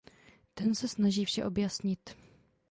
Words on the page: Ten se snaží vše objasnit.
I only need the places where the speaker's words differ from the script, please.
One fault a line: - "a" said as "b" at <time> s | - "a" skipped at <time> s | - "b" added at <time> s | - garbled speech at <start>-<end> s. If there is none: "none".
none